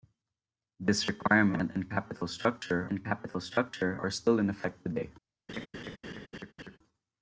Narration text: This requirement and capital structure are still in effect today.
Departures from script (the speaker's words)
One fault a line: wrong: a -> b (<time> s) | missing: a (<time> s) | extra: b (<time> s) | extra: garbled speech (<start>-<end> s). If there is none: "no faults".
extra: and capital structure (2.9 s)